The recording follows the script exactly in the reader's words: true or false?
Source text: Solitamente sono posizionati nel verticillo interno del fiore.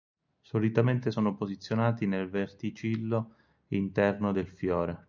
true